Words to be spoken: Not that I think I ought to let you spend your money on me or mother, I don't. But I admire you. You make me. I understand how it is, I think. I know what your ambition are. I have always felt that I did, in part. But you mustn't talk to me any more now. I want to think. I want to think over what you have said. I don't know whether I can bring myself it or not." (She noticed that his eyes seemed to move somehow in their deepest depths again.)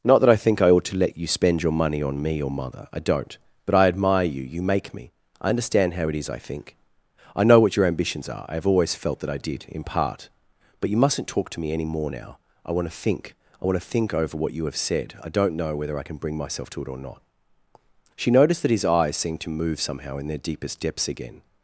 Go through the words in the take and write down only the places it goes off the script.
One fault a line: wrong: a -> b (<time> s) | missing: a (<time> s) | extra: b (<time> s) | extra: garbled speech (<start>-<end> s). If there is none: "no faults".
wrong: ambition -> ambitions (7.8 s)
extra: to (16.7 s)